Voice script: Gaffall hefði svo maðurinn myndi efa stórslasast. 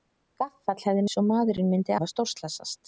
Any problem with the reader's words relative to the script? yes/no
no